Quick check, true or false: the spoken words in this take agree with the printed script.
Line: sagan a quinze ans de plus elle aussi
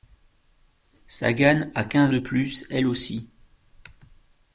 false